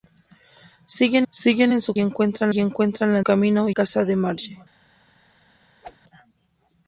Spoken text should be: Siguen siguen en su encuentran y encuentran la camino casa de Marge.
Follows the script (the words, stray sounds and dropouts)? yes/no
no